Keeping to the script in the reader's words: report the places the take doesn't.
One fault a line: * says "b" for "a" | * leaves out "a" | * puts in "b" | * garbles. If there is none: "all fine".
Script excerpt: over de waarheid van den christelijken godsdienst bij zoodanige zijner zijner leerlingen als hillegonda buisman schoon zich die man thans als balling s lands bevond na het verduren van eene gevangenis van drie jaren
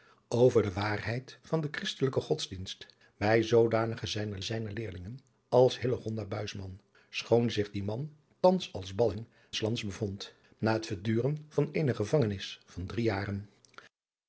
all fine